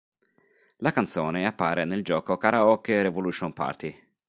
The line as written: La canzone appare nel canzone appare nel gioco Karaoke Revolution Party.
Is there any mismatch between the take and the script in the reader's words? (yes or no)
yes